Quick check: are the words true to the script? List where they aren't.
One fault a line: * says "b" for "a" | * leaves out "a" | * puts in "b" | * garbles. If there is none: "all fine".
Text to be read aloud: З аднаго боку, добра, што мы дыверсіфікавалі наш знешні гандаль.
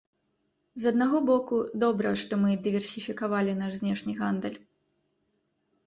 all fine